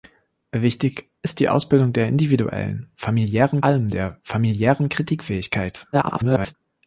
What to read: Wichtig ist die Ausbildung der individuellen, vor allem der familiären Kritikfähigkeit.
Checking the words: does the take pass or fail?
fail